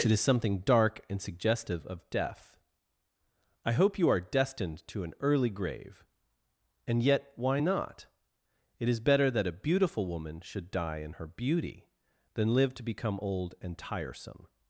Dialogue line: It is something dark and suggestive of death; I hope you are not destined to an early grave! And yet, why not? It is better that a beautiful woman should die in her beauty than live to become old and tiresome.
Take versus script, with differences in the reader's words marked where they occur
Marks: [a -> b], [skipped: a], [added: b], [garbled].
It is something dark and suggestive of death; I hope you are [skipped: not] destined to an early grave! And yet, why not? It is better that a beautiful woman should die in her beauty than live to become old and tiresome.